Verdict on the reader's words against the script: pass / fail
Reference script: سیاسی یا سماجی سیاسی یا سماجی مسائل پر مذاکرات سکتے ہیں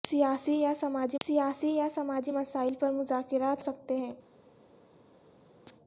pass